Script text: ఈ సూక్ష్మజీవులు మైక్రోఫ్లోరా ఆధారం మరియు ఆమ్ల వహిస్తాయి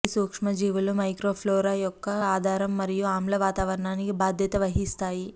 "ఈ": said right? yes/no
yes